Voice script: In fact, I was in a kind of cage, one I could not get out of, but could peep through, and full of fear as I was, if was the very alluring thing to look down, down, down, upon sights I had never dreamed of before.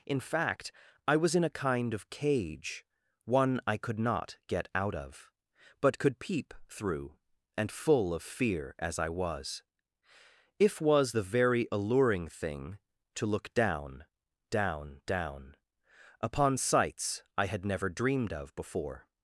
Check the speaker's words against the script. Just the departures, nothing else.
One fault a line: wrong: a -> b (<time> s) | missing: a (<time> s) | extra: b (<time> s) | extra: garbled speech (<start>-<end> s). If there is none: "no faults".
no faults